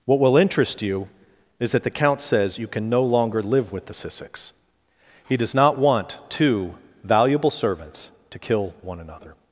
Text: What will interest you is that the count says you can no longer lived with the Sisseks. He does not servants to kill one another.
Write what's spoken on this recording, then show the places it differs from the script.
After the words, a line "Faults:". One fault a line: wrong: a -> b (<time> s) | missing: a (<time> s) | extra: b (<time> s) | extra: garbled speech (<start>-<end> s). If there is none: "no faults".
What will interest you is that the count says you can no longer live with the Sisseks. He does not want two valuable servants to kill one another.
Faults:
wrong: lived -> live (3.4 s)
extra: want two valuable (5.8 s)